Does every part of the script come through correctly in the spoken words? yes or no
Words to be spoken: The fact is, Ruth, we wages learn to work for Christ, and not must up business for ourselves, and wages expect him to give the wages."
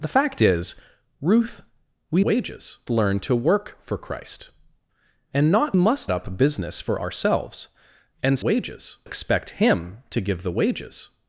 yes